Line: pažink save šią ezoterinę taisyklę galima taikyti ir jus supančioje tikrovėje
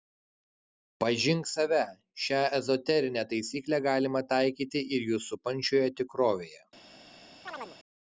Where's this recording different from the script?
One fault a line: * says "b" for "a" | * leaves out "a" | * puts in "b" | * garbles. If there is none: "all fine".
all fine